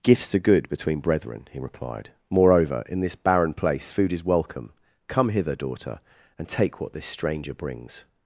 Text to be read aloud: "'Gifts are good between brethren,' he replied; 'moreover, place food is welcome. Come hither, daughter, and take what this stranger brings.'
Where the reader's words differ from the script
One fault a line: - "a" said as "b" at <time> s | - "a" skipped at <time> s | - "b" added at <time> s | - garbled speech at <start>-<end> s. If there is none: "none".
- "in this barren" added at 2.9 s